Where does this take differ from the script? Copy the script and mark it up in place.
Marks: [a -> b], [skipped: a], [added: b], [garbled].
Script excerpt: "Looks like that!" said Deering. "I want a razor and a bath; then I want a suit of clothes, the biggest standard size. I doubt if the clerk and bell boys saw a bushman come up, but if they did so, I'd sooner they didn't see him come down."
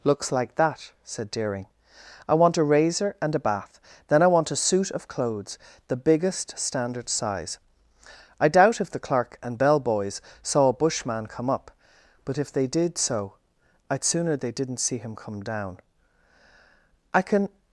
"Looks like that!" said Deering. "I want a razor and a bath; then I want a suit of clothes, the biggest standard size. I doubt if the clerk and bell boys saw a bushman come up, but if they did so, I'd sooner they didn't see him come down." [added: I can]